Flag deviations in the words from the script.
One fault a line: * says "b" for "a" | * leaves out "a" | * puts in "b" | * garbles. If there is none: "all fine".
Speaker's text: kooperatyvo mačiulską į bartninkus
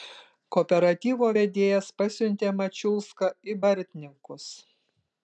* puts in "vedėjas pasiuntė"